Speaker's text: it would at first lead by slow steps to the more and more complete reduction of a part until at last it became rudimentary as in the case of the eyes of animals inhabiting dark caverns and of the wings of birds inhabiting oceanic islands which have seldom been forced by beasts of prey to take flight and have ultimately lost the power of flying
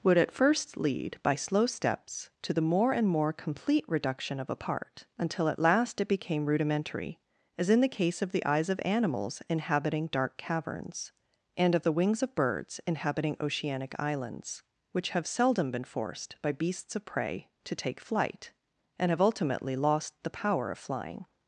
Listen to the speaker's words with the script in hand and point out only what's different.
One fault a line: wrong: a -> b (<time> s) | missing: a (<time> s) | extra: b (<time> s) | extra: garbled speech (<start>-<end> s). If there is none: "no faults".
missing: it (0.0 s)